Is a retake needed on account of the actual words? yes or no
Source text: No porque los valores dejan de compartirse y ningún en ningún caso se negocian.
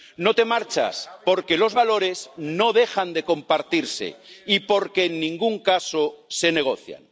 yes